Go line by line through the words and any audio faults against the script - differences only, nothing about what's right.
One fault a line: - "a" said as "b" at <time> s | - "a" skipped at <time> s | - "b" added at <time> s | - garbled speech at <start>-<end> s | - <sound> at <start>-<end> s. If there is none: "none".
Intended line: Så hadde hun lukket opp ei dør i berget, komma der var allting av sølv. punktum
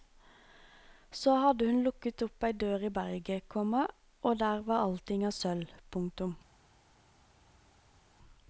- "og" added at 4.2 s